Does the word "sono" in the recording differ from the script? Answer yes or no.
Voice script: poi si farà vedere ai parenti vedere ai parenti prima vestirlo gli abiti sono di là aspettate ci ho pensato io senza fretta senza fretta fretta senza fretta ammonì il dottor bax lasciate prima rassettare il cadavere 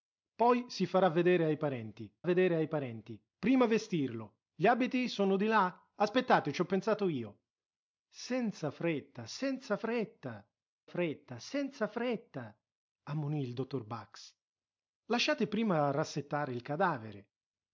no